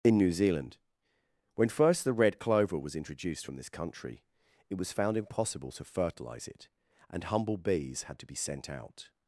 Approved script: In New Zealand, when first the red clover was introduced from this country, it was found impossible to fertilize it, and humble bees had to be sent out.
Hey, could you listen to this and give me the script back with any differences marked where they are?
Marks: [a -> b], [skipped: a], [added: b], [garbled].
In New Zealand, when first the red clover was introduced from this country, it was found impossible to fertilize it, and humble bees had to be sent out.